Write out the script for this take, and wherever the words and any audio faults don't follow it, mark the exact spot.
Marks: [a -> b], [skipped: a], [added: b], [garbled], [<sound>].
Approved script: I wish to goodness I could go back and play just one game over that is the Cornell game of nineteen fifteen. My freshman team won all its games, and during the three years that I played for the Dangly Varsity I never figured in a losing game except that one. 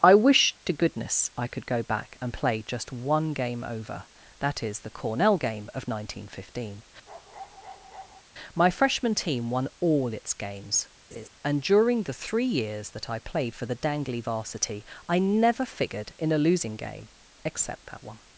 I wish to goodness I could go back and play just one game over that is the Cornell game of nineteen fifteen. [bark] My freshman team won all its games, [laugh] and during the three years that I played for the Dangly Varsity I never figured in a losing game except that one.